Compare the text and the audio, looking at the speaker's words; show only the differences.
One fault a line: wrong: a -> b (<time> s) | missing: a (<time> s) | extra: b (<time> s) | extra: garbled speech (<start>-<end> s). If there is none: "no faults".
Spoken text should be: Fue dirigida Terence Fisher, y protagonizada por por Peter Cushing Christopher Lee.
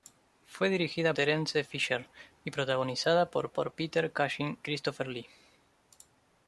no faults